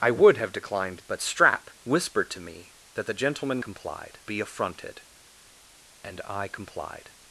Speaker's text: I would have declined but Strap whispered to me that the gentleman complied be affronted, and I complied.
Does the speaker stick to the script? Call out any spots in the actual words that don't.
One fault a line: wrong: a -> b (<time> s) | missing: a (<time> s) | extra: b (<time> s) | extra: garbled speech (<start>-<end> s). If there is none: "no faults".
no faults